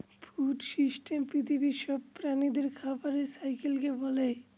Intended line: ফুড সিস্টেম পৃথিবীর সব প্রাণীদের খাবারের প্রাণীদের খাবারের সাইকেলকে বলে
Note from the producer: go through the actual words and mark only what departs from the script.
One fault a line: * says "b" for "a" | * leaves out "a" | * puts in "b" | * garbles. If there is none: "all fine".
* leaves out "প্রাণীদের খাবারের"